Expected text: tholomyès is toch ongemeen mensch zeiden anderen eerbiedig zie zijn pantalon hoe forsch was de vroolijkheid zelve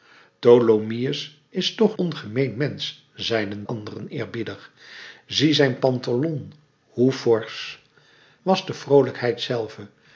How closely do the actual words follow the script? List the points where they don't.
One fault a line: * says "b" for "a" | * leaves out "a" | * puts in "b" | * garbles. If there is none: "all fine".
all fine